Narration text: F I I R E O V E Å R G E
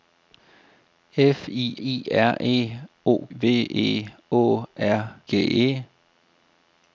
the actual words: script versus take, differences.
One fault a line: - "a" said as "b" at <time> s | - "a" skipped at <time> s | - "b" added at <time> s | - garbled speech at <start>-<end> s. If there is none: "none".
none